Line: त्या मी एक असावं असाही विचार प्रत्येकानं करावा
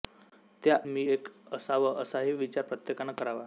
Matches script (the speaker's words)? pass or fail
pass